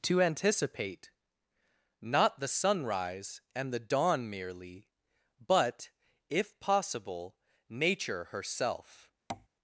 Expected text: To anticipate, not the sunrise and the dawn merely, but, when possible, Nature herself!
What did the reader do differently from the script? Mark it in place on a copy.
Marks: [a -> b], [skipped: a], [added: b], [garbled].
To anticipate, not the sunrise and the dawn merely, but, [when -> if] possible, Nature herself!